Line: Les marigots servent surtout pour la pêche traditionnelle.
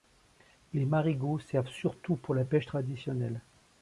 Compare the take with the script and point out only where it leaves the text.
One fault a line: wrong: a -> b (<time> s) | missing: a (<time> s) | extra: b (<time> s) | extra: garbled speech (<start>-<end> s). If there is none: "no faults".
no faults